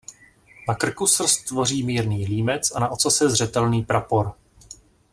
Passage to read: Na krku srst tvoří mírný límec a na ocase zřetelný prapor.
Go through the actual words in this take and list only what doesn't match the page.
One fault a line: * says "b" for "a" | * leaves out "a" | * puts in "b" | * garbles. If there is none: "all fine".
all fine